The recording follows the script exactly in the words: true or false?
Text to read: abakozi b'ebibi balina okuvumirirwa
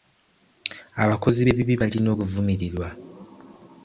true